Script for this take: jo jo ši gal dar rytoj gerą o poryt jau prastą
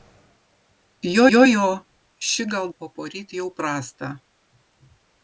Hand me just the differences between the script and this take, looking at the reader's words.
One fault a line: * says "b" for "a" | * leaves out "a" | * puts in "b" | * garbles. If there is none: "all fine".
* puts in "jo"
* leaves out "dar rytoj gerą"